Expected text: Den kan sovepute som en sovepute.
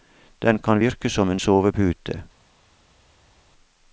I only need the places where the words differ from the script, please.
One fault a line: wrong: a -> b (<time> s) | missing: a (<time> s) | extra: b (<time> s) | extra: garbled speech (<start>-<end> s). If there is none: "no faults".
wrong: sovepute -> virke (0.8 s)